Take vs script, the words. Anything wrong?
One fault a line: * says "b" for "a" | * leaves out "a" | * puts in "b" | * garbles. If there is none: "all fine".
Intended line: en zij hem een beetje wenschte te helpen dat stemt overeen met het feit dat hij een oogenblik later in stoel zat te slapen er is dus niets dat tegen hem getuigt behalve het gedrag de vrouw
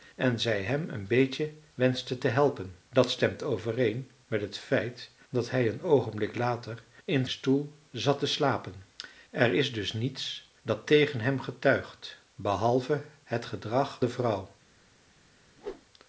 all fine